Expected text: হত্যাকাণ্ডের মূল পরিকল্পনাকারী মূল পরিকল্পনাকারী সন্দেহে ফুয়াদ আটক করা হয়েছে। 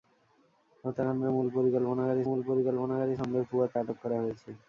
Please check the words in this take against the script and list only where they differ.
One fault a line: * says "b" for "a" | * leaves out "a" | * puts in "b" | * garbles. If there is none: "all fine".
all fine